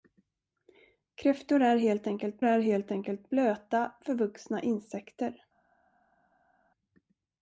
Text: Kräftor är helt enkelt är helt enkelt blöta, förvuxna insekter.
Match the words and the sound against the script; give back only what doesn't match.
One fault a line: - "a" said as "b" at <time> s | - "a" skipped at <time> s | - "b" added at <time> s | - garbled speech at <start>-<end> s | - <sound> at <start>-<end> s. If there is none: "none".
none